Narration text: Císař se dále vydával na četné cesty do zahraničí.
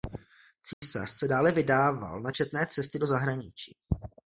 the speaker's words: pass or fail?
pass